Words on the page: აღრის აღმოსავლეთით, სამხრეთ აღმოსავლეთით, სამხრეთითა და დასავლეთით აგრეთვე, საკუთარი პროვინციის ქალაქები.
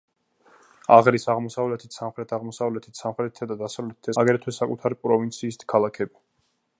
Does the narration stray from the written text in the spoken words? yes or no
no